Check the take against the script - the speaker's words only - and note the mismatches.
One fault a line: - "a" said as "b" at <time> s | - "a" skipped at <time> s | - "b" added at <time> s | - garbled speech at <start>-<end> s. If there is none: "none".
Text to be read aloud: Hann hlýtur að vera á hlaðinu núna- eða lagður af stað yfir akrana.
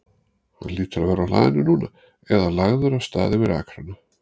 none